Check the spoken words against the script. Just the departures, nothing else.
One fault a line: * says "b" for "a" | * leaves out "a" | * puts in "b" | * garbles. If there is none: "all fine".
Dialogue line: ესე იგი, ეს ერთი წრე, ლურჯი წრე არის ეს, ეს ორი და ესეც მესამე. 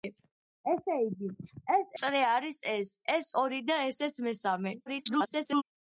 * leaves out "ერთი წრე ლურჯი"
* garbles